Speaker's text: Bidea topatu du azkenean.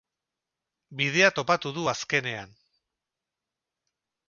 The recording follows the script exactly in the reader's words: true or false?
true